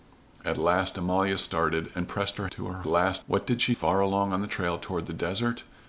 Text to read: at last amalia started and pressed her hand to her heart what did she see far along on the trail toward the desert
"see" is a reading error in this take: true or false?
true